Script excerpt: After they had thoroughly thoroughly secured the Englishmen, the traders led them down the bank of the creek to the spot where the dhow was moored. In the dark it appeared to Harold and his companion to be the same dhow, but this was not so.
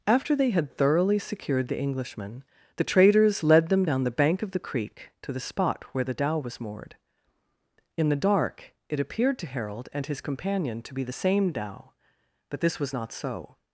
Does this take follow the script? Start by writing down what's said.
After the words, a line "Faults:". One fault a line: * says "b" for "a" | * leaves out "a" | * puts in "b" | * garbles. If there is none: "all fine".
After they had thoroughly secured the Englishmen, the traders led them down the bank of the creek to the spot where the dhow was moored. In the dark it appeared to Harold and his companion to be the same dhow, but this was not so.
Faults:
* leaves out "thoroughly"